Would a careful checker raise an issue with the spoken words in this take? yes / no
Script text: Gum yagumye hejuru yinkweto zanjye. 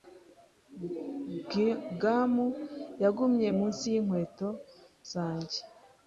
yes